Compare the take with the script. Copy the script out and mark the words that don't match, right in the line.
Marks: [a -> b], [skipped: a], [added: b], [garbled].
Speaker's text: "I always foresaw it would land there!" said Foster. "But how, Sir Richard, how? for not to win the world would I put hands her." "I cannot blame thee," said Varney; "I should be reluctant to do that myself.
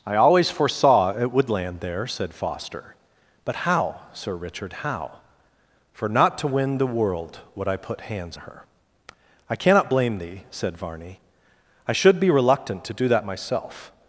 "I always foresaw it would land there!" said Foster. "But how, Sir Richard, how? for not to win the world would I put hands her." "I cannot blame thee," said Varney; "I should be reluctant to do that myself.